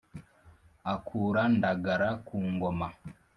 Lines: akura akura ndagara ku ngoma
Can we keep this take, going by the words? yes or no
no